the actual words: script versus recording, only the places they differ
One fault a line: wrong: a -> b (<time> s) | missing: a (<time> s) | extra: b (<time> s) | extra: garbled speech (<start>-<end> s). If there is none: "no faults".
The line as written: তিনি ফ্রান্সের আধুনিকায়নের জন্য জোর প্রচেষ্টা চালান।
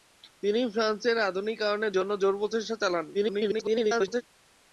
extra: garbled speech (3.1-4.2 s)